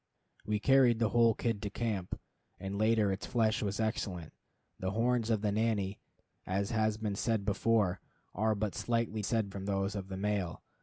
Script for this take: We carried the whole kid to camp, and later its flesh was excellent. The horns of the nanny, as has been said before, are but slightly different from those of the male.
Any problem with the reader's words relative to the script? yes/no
yes